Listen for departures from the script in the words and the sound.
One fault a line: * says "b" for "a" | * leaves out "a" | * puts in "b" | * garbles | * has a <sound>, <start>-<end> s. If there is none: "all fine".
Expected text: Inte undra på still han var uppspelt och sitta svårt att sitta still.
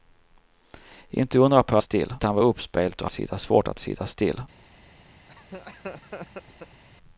* has a laugh, 5.3-6.8 s